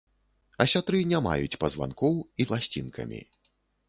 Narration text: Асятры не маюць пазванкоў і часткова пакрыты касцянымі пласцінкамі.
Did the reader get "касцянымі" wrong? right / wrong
wrong